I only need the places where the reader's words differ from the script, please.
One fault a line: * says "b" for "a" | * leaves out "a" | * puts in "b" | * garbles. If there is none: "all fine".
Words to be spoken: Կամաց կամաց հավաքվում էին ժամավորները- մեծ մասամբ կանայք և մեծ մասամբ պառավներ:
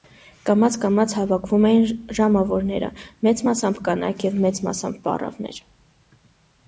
all fine